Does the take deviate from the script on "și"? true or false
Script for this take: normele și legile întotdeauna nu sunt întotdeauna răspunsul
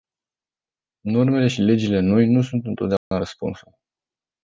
false